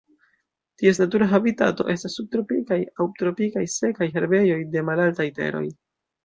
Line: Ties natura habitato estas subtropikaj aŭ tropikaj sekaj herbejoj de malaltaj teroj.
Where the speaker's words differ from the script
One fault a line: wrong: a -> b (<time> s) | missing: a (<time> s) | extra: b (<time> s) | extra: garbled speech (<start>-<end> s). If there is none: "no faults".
no faults